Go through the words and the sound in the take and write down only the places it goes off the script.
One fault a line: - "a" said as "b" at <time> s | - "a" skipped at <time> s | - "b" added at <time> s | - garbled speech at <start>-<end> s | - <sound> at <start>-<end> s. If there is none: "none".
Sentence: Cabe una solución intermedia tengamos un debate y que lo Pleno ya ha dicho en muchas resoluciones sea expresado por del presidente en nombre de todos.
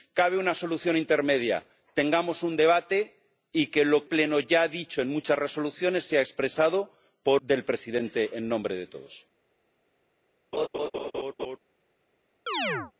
- laugh at 10.5-11.6 s
- chirp at 12.5-12.9 s